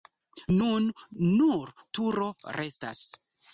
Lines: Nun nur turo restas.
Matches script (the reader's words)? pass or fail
pass